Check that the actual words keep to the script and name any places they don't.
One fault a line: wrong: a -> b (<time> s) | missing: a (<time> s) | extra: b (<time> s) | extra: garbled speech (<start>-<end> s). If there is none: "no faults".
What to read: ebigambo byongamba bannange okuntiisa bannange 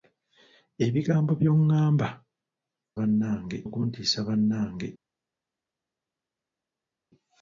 no faults